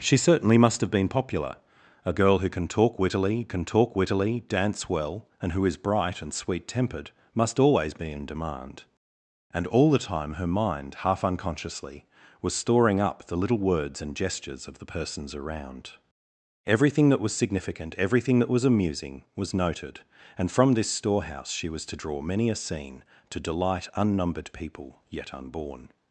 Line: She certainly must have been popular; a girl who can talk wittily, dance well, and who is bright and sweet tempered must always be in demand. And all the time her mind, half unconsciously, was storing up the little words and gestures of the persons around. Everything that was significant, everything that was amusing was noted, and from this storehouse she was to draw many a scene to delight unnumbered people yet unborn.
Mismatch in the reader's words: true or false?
true